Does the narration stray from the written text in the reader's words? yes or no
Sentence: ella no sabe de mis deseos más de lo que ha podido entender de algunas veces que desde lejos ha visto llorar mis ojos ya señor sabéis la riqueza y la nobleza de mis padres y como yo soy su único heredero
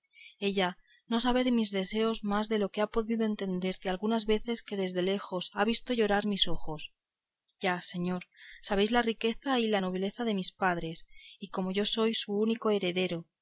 no